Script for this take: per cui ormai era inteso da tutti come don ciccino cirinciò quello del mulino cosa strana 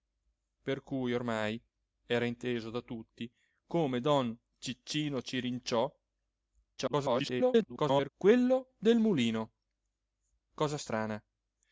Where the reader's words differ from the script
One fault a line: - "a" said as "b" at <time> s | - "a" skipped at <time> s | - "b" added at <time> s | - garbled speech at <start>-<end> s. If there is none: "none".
- garbled speech at 6.8-8.1 s